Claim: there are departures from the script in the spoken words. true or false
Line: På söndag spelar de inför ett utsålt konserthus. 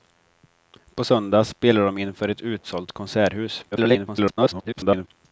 true